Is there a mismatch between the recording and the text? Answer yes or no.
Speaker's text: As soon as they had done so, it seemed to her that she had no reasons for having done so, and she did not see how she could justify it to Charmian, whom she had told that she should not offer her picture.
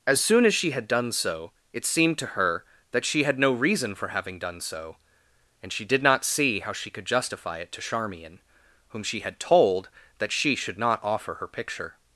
yes